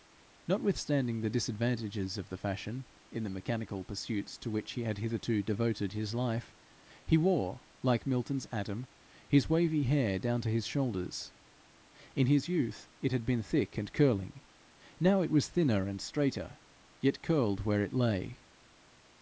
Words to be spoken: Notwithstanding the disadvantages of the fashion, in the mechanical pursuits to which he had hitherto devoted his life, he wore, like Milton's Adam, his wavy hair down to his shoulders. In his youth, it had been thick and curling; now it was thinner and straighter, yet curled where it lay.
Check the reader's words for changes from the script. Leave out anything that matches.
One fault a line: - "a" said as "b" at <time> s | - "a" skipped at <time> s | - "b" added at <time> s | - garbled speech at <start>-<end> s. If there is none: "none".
none